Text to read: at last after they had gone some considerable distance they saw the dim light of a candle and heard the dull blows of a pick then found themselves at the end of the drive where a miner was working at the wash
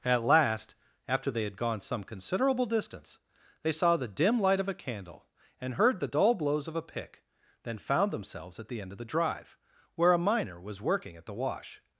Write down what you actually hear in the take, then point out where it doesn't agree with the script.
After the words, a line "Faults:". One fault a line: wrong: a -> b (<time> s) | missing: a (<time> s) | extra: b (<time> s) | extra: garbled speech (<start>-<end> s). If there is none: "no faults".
at last after they had gone some considerable distance they saw the dim light of a candle and heard the dull blows of a pick then found themselves at the end of the drive where a miner was working at the wash
Faults:
no faults